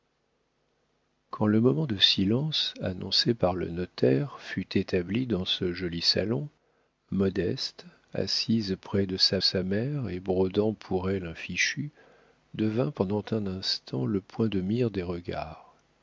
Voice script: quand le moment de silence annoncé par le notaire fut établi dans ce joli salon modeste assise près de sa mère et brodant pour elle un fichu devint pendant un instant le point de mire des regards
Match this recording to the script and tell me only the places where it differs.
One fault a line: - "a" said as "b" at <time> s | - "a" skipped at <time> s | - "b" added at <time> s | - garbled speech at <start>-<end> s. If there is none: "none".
- "sa" added at 9.4 s